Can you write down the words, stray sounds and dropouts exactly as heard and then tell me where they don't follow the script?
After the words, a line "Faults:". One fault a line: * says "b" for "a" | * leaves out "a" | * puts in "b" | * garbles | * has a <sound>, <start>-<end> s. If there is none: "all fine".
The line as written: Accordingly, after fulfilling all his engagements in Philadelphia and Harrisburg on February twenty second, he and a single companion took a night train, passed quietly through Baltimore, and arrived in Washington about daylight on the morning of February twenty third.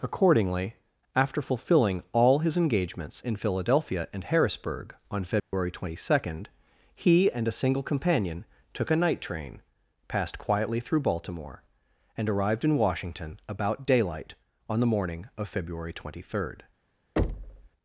Accordingly, after fulfilling all his engagements in Philadelphia and Harrisburg on February twenty second, he and a single companion took a night train, passed quietly through Baltimore, and arrived in Washington about daylight on the morning of February twenty third.
Faults:
* has a dropout, 5.4-5.5 s
* has a thud, 17.2-17.7 s